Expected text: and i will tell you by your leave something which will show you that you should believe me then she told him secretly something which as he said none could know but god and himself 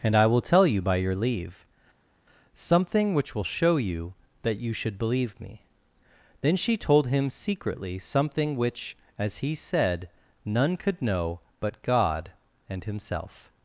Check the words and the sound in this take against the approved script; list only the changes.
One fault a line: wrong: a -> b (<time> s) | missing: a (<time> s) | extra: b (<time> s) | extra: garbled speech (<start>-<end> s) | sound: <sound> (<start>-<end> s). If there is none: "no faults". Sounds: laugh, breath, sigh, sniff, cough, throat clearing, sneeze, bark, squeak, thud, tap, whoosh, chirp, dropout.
no faults